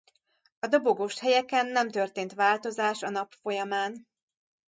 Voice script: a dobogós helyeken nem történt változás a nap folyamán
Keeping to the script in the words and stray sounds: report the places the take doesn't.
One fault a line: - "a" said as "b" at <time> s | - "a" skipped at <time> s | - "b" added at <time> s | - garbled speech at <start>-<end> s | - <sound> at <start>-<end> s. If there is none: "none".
none